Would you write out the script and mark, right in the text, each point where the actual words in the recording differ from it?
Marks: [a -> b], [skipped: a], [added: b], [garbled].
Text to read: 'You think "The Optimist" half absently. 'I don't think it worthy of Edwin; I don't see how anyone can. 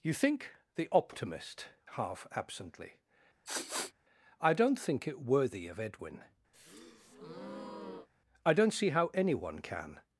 'You think "The Optimist" half absently. 'I don't think it worthy of Edwin; I don't see how anyone can.